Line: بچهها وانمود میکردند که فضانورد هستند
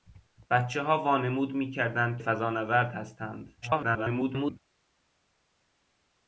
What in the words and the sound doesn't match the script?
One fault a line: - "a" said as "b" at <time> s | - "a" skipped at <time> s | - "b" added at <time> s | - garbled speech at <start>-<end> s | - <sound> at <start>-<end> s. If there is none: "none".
- "که" skipped at 2.2 s
- garbled speech at 3.6-4.6 s